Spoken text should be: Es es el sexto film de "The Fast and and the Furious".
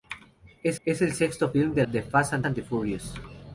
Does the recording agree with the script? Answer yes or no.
yes